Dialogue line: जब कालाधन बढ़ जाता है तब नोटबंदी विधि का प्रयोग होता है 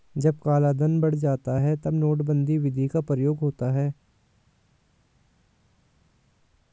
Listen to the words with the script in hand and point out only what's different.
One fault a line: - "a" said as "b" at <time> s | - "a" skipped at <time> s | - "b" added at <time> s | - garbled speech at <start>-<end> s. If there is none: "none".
none